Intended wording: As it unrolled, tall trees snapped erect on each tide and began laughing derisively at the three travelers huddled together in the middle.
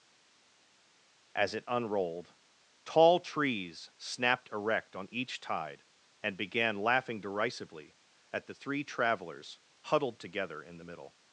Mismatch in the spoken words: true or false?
false